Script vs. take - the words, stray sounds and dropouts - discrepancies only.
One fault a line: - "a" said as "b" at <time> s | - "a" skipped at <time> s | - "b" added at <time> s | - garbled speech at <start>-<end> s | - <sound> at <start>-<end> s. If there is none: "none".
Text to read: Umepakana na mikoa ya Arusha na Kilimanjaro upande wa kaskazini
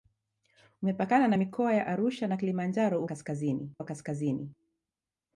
- "upande" said as "kaskazini" at 3.0 s